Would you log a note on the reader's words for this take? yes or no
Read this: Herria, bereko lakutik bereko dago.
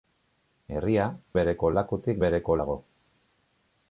no